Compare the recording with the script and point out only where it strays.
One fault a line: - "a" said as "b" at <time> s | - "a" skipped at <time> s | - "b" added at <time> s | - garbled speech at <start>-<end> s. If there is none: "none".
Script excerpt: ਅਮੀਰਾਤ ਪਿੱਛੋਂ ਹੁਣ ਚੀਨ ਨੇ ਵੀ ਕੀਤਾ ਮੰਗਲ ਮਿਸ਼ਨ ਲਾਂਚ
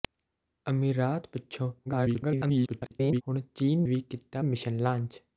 - garbled speech at 1.9-3.2 s
- "ਨੇ" skipped at 3.8 s
- "ਮੰਗਲ" skipped at 4.4 s